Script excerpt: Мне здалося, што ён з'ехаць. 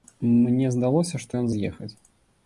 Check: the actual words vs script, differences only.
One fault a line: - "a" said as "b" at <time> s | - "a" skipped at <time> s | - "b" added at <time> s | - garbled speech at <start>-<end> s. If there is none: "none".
none